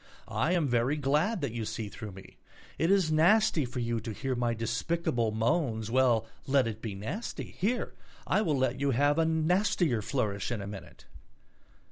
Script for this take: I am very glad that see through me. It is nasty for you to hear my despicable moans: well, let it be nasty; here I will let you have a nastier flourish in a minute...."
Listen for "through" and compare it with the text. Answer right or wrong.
right